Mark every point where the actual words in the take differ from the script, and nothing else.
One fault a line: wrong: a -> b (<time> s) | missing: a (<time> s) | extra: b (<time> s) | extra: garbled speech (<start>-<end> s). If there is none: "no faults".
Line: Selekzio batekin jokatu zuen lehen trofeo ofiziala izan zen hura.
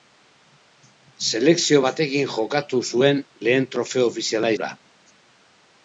missing: izan zen (4.5 s)